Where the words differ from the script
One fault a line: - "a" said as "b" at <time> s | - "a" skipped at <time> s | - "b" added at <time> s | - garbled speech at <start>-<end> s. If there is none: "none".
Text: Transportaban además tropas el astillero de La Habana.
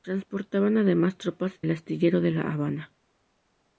none